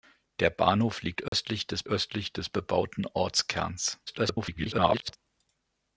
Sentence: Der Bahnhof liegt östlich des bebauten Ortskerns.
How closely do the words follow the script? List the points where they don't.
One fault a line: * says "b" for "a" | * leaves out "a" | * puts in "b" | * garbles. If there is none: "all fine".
* puts in "östlich des"
* garbles